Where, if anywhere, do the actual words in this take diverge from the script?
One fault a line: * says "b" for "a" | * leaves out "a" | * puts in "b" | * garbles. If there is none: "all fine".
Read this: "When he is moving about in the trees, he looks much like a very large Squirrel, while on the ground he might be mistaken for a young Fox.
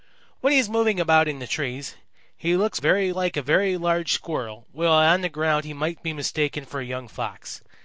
* says "very" for "much"